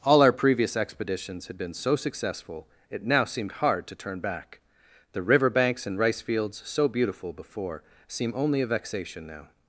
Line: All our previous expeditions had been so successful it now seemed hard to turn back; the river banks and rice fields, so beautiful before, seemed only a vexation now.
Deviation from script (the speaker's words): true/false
true